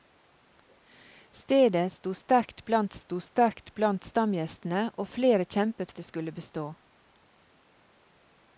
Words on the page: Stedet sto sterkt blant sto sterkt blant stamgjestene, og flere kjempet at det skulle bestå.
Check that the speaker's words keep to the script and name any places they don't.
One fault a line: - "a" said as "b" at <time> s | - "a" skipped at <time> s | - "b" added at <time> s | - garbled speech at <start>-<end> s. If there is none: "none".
none